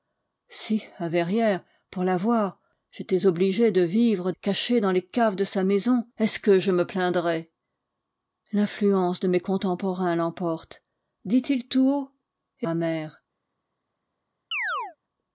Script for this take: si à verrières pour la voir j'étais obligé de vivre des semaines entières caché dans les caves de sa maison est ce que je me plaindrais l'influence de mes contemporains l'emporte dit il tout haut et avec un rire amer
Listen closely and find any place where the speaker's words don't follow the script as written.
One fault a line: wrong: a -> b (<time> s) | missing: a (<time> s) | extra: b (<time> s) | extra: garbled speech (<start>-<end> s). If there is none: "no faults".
missing: des semaines entières (4.3 s)
missing: avec un rire (12.7 s)